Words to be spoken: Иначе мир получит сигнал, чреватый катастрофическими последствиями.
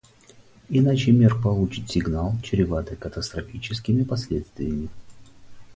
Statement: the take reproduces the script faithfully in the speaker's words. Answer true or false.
true